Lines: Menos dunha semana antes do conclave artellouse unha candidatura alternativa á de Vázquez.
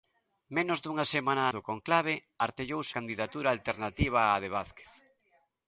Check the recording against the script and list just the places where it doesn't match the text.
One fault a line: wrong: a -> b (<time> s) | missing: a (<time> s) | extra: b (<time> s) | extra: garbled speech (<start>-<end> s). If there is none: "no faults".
missing: antes (1.4 s)
missing: unha (2.9 s)